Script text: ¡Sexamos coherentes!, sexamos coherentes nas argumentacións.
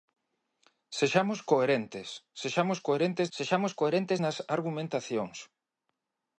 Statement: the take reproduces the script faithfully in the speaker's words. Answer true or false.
false